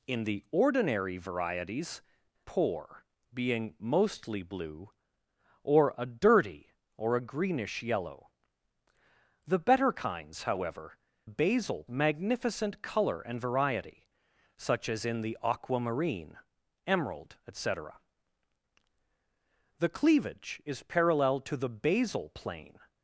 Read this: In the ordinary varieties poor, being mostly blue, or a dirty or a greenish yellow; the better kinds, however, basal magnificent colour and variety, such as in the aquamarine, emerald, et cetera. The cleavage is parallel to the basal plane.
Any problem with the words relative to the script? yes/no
no